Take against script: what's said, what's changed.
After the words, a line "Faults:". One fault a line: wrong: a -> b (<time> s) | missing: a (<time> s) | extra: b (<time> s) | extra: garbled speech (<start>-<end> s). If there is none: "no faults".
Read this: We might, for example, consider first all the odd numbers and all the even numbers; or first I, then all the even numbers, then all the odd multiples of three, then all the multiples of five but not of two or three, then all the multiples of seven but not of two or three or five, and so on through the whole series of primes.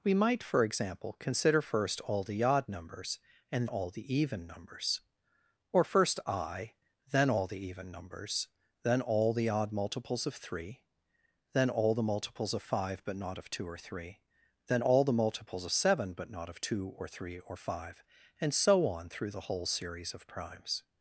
We might, for example, consider first all the odd numbers and all the even numbers; or first I, then all the even numbers, then all the odd multiples of three, then all the multiples of five but not of two or three, then all the multiples of seven but not of two or three or five, and so on through the whole series of primes.
Faults:
no faults